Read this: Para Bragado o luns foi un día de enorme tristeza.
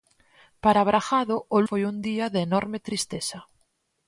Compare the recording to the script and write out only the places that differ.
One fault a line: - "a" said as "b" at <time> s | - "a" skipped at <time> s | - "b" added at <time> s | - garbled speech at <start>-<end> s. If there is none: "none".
- "luns" skipped at 1.6 s